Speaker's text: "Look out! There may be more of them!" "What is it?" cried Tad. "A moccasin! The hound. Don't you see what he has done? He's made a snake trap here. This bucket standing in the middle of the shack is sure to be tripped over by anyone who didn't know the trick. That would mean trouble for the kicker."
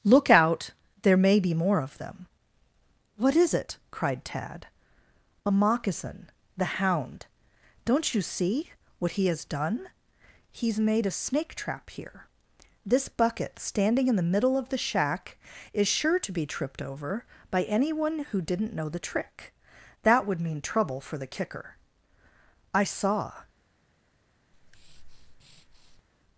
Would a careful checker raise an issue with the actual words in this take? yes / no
yes